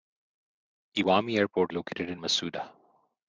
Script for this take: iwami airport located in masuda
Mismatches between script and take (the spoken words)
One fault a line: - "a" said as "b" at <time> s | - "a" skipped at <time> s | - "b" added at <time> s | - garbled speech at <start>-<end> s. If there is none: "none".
none